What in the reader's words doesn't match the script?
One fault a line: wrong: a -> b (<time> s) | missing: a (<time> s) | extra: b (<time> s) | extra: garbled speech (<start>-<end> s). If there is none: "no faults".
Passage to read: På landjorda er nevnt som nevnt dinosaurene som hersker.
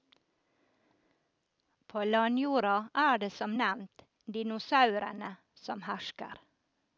wrong: nevnt -> det (3.2 s)